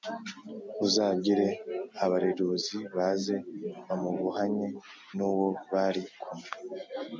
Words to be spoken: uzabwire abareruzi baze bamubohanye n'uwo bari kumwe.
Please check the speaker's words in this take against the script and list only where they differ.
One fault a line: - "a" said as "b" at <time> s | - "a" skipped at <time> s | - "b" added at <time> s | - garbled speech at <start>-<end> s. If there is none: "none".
none